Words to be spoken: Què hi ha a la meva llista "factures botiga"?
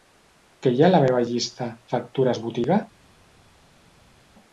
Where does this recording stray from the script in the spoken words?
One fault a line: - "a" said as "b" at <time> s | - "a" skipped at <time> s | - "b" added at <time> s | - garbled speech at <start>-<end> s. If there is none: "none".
none